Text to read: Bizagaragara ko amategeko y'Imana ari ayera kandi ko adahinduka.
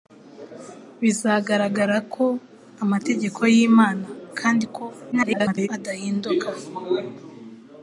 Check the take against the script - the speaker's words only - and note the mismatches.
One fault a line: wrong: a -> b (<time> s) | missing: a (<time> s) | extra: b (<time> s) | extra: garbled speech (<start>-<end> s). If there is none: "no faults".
missing: ari ayera (4.1 s)
extra: garbled speech (5.1-5.7 s)